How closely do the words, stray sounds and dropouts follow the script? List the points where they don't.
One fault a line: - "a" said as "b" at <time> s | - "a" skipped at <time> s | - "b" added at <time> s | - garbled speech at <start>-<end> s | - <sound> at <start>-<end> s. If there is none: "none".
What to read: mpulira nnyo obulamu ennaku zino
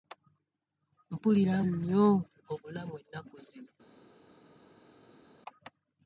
none